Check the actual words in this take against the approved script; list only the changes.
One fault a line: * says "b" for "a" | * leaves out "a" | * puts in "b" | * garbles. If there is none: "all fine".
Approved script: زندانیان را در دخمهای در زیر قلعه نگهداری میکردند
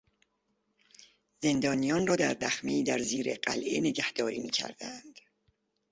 all fine